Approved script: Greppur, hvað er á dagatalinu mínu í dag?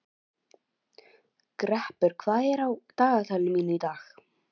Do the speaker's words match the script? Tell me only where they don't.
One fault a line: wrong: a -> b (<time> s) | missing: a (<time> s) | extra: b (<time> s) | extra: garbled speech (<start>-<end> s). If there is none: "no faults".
no faults